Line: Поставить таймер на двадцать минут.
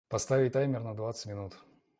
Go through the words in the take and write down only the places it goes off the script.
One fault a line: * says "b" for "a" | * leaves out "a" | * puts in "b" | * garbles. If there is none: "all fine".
all fine